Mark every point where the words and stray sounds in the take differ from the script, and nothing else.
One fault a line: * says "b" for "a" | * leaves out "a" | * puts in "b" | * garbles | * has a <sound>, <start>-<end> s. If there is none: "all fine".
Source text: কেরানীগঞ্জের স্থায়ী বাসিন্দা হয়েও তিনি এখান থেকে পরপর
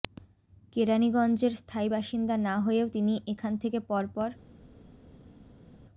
* puts in "না"